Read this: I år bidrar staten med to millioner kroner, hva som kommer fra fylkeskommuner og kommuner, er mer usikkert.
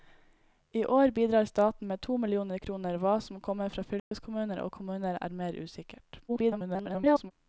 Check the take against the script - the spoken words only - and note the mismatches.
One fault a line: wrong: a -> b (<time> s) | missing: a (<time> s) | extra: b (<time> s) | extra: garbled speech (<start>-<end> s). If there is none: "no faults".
extra: garbled speech (6.3-7.3 s)